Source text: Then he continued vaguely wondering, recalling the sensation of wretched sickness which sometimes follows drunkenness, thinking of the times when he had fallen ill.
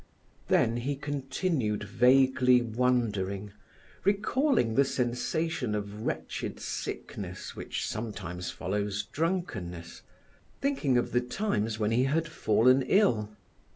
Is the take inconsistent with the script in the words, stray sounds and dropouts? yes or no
no